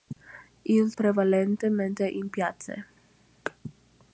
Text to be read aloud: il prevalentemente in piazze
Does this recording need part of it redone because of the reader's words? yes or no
no